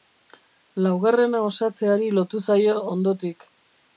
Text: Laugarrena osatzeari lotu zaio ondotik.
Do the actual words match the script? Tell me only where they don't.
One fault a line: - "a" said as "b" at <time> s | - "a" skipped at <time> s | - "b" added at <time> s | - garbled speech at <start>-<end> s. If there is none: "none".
none